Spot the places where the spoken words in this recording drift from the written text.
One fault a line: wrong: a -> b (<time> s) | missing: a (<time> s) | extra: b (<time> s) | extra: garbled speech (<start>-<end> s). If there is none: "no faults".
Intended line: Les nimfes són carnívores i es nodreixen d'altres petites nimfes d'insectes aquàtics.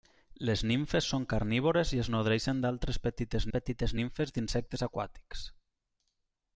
extra: petites (3.5 s)